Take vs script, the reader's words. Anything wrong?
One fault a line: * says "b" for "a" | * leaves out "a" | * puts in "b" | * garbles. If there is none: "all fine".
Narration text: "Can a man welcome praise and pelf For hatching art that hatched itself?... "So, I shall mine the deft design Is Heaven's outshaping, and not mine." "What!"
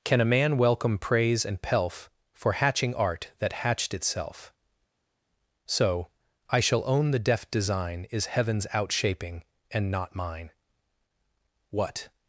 * says "own" for "mine"